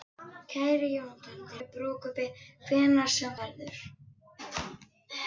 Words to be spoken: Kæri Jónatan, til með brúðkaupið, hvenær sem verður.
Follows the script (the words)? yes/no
yes